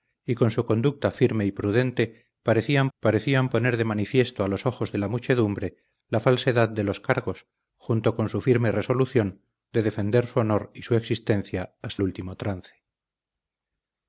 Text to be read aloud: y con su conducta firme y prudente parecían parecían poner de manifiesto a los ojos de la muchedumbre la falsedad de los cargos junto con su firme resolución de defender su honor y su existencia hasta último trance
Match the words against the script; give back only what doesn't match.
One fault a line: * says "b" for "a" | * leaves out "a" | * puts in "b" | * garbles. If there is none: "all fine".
all fine